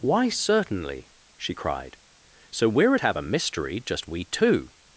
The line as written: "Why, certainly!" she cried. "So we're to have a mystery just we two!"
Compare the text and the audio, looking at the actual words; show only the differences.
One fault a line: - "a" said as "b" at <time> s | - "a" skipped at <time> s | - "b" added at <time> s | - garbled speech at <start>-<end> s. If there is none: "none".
- "to" said as "at" at 2.9 s